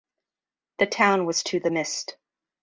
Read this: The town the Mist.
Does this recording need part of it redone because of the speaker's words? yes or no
yes